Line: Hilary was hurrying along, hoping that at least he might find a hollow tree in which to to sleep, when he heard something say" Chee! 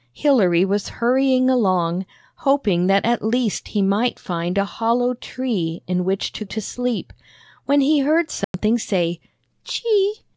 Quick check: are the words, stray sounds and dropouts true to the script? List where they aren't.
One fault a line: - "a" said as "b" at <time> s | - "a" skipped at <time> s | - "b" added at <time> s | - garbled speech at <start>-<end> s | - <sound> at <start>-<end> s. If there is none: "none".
- dropout at 8.4-8.5 s